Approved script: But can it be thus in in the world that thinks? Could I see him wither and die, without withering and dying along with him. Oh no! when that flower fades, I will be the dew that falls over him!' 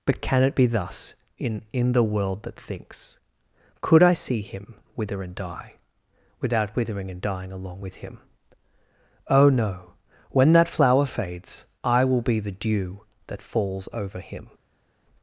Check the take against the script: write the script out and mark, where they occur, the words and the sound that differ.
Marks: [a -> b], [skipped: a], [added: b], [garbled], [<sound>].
But can it be thus in in the world that thinks? Could I see him wither and die, without withering and dying along with him. Oh no! when that flower fades, I will be the dew that falls over him!'